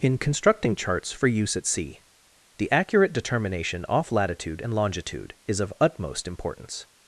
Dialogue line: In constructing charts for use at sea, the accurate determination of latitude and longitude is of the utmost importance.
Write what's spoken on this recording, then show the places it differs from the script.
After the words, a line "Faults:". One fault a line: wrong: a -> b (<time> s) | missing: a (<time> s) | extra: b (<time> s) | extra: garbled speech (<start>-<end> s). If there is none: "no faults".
In constructing charts for use at sea, the accurate determination off latitude and longitude is of utmost importance.
Faults:
wrong: of -> off (3.9 s)
missing: the (5.7 s)